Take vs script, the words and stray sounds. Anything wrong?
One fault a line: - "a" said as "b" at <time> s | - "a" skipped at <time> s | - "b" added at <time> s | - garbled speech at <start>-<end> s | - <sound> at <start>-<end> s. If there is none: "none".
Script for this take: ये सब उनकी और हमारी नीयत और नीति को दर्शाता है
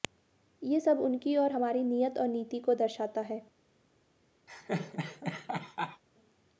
- laugh at 4.5-6.0 s